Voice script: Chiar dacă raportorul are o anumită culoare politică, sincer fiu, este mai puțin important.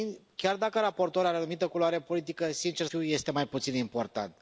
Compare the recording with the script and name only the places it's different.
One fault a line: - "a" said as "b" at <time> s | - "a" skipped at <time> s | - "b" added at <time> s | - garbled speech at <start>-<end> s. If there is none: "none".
none